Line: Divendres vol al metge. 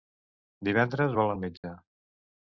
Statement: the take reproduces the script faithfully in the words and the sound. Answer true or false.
false